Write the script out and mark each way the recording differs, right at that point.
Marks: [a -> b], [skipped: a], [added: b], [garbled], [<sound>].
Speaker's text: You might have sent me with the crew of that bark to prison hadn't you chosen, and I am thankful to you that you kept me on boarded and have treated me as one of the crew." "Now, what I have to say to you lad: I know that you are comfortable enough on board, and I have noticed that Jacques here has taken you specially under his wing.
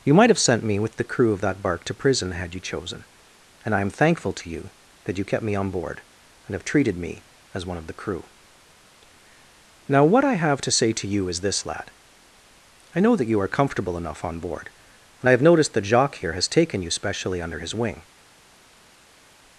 You might have sent me with the crew of that bark to prison [hadn't -> had] you chosen, and I am thankful to you that you kept me on [boarded -> board] and have treated me as one of the crew." "Now, what I have to say to you [added: is this] lad: I know that you are comfortable enough on board, and I have noticed that Jacques here has taken you specially under his wing.